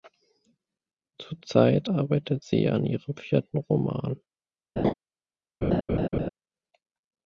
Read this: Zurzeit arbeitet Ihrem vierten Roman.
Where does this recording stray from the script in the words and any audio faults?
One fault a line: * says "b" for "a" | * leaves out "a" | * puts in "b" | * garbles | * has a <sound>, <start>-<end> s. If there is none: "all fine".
* puts in "sie an"
* has a laugh, 4.8-4.9 s
* has a laugh, 5.6-6.3 s